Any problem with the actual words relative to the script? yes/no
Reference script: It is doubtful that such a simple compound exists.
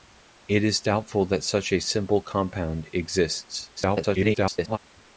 yes